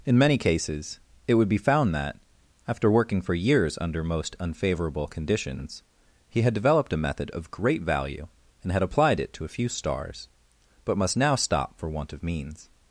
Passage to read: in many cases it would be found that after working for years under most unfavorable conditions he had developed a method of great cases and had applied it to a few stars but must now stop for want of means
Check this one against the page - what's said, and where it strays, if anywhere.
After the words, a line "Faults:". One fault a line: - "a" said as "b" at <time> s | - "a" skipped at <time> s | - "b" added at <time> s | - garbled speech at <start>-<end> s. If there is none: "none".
in many cases it would be found that after working for years under most unfavorable conditions he had developed a method of great value and had applied it to a few stars but must now stop for want of means
Faults:
- "cases" said as "value" at 7.8 s